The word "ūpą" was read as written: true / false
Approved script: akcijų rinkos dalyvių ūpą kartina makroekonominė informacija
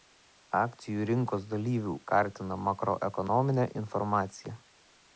false